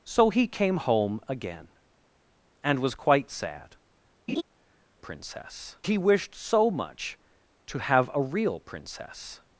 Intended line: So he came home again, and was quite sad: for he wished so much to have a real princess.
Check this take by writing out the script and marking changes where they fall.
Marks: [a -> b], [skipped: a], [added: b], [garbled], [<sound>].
So he came home again, and was quite sad: [laugh] [for -> princess] he wished so much to have a real princess.